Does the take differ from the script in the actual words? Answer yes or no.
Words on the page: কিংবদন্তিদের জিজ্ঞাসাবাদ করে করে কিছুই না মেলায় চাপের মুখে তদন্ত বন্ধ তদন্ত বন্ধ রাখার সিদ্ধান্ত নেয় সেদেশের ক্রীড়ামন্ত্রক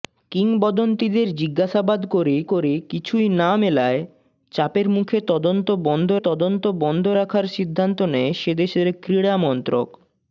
no